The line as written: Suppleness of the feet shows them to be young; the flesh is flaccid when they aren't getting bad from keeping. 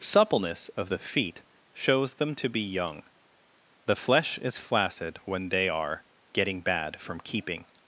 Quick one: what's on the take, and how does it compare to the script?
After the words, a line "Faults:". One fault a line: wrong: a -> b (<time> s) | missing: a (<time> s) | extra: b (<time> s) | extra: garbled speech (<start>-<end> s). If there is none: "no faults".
Suppleness of the feet shows them to be young; the flesh is flaccid when they are getting bad from keeping.
Faults:
wrong: aren't -> are (5.7 s)